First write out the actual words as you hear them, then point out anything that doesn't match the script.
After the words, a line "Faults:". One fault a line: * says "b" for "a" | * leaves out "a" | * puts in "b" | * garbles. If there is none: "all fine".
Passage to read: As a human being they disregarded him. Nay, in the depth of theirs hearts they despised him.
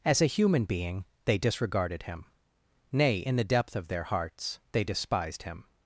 As a human being they disregarded him. Nay, in the depth of their hearts they despised him.
Faults:
* says "their" for "theirs"